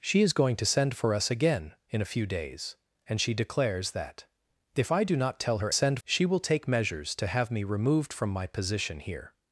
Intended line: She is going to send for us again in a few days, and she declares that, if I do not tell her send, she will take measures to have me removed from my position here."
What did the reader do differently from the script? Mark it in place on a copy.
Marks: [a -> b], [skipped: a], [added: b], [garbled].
She is going to send for us again in a few days, and she declares that, if I do not tell her send, she will take measures to have me removed from my position here."